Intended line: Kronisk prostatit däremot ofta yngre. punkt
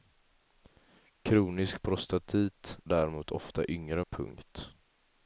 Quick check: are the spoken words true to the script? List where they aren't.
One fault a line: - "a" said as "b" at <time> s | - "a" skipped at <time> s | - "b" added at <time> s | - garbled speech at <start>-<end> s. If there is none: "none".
none